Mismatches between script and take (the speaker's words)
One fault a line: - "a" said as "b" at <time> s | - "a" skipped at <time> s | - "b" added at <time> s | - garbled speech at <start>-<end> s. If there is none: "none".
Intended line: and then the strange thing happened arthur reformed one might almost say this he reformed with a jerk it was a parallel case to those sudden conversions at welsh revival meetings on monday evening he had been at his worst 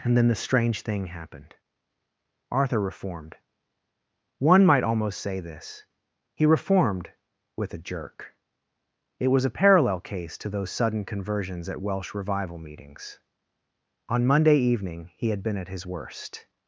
none